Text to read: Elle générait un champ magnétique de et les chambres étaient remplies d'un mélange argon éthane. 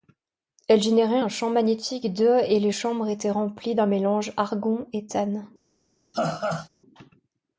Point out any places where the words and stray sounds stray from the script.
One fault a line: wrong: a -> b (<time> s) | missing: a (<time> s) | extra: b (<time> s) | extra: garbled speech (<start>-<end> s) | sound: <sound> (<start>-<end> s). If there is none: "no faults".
sound: laugh (6.1-6.7 s)